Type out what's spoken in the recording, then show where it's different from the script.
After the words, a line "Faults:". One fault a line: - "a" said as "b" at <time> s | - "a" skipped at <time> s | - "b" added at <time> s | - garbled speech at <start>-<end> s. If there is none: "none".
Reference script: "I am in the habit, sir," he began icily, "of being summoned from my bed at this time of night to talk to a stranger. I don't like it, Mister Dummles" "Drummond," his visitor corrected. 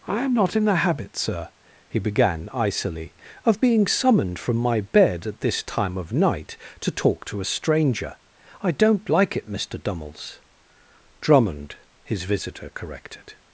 "I am not in the habit, sir," he began icily, "of being summoned from my bed at this time of night to talk to a stranger. I don't like it, Mister Dummles" "Drummond," his visitor corrected.
Faults:
- "not" added at 0.3 s